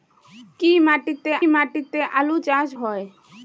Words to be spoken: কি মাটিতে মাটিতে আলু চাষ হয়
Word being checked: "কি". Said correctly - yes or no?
yes